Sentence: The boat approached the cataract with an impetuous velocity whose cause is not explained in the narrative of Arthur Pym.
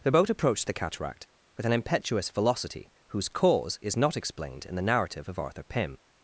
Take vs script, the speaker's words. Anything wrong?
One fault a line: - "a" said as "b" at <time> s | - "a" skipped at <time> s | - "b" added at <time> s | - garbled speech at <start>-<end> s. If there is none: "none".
none